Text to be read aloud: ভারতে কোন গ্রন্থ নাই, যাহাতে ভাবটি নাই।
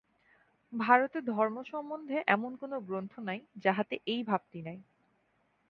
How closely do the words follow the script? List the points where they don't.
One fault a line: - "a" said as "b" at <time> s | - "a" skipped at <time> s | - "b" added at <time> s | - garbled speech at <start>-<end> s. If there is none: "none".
- "ধর্ম সম্বন্ধে এমন" added at 1.3 s
- "এই" added at 4.1 s